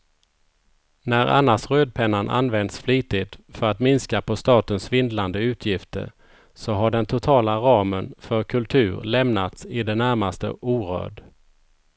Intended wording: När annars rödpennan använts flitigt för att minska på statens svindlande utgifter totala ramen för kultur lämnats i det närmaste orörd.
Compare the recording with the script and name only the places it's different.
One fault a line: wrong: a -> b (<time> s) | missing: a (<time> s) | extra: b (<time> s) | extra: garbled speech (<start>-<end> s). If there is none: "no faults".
extra: så har den (6.5 s)